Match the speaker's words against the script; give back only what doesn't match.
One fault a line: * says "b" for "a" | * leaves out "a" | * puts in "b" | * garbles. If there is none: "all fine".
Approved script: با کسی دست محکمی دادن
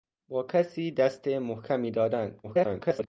* garbles